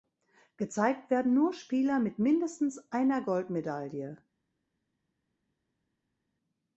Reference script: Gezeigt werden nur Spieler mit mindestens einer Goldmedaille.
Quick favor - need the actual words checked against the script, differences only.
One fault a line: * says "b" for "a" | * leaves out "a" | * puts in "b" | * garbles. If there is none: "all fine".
all fine